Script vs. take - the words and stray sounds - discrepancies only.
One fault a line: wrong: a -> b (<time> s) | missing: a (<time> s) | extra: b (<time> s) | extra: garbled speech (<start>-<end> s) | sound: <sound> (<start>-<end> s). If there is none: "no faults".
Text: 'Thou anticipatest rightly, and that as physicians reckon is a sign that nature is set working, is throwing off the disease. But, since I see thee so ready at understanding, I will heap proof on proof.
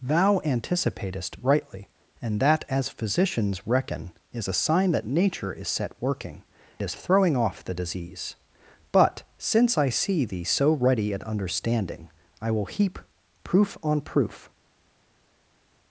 no faults